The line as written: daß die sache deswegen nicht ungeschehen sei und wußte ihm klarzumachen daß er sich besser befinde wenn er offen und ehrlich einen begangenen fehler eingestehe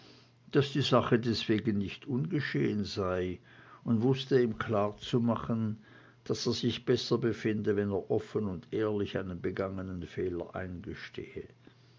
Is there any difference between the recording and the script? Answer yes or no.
no